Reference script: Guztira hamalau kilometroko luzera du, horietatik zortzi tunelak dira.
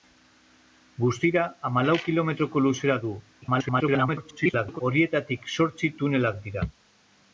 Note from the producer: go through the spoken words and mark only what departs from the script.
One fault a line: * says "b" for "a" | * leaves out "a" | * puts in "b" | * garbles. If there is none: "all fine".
* garbles